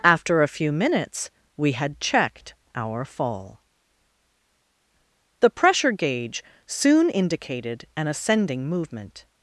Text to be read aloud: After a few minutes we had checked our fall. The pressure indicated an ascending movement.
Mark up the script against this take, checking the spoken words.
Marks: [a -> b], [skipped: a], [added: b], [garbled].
After a few minutes we had checked our fall. The pressure [added: gauge soon] indicated an ascending movement.